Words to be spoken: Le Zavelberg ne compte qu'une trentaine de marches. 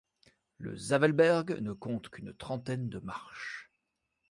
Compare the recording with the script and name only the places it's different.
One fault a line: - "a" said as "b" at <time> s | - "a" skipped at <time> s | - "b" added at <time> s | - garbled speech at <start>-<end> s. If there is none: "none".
none